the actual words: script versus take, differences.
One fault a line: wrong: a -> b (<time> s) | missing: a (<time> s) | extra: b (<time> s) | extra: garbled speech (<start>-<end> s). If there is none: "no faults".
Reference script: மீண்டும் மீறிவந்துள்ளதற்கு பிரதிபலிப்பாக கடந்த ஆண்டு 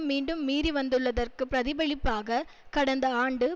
no faults